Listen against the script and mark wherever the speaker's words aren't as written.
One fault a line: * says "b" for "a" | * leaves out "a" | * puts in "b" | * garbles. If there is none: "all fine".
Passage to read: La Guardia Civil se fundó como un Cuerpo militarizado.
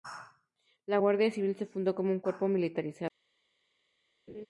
all fine